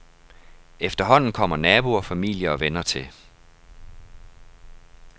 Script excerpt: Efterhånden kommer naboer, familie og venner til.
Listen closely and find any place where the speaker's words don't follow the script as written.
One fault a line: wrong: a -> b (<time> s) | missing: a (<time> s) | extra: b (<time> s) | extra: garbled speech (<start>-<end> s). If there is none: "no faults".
no faults